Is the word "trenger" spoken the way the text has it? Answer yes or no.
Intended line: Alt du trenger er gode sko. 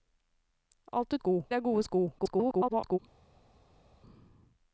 no